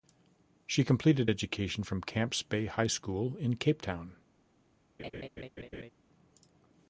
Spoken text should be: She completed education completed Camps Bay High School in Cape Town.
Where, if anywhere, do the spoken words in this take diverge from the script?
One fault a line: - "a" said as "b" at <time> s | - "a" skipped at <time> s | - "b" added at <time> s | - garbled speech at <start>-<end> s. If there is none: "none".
- "completed" said as "from" at 1.8 s